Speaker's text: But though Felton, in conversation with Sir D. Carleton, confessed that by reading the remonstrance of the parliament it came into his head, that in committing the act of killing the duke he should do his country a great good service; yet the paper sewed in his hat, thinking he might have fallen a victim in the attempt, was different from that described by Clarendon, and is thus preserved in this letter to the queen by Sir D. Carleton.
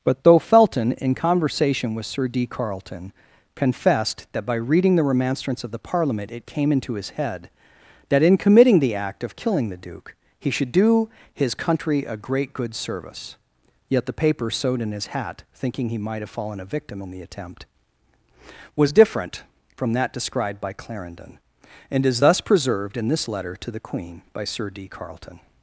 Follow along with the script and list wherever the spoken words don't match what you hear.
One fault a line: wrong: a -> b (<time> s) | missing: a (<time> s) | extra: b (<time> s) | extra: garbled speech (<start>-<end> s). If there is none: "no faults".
no faults